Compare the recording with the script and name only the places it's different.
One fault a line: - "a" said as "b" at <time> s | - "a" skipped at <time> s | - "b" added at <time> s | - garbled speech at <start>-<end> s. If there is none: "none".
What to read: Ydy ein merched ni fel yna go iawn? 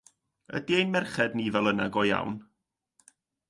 none